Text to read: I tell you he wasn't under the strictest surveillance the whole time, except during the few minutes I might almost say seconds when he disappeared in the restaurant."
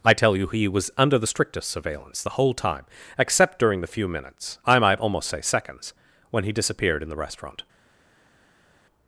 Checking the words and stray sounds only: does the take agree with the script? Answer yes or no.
no